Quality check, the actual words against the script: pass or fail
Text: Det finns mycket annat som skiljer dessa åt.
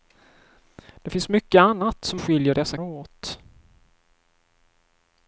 pass